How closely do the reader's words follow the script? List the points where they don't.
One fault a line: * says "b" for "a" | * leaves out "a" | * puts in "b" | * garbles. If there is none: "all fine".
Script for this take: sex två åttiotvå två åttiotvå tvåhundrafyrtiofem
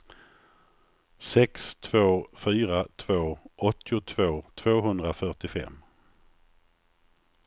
* says "fyra" for "åttiotvå"